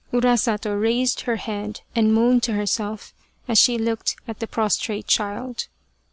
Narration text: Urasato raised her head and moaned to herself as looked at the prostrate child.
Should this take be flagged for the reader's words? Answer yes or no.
yes